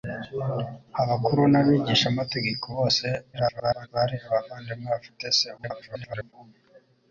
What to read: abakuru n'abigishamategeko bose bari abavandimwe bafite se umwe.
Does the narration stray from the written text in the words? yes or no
yes